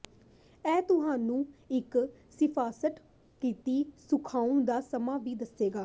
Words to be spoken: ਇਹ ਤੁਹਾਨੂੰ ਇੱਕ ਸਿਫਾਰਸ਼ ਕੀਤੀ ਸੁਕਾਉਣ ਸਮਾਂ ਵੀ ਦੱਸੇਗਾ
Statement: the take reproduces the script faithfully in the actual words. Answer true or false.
false